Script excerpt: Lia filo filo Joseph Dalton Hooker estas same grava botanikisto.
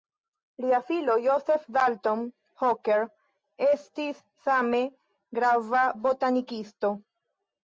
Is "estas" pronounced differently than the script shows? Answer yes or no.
yes